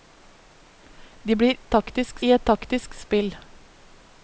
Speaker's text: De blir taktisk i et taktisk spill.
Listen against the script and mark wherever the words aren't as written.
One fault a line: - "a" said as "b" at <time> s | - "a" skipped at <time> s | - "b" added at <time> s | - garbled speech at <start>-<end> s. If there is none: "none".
none